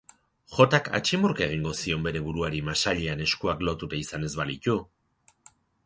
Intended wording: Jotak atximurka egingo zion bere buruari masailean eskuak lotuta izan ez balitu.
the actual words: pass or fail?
pass